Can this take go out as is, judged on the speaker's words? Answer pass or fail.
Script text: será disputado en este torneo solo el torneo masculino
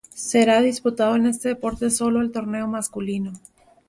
fail